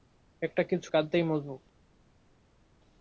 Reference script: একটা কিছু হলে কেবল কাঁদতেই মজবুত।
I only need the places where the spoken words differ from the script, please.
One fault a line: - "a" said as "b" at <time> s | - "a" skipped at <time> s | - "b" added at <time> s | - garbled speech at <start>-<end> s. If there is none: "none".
- "হলে কেবল" skipped at 0.9 s